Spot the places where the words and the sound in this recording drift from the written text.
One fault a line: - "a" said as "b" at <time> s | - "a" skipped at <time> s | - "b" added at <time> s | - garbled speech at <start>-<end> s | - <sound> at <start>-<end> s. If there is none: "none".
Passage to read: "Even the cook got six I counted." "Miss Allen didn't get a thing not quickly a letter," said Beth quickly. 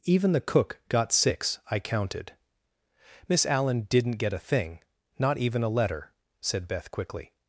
- "quickly" said as "even" at 5.4 s